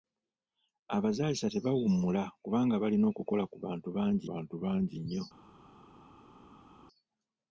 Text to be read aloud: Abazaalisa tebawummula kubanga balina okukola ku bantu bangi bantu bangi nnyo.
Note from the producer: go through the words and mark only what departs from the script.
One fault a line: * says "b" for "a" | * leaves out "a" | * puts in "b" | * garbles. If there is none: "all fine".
all fine